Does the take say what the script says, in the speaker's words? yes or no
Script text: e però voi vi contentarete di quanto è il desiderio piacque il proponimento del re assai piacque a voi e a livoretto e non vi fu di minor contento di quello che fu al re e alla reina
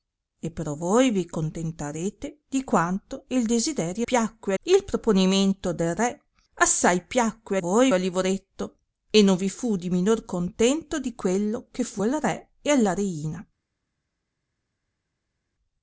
yes